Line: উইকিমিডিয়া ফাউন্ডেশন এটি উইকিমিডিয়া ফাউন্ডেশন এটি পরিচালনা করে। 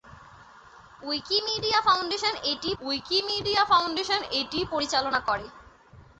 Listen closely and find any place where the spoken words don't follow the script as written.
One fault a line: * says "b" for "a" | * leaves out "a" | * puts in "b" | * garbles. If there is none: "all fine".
all fine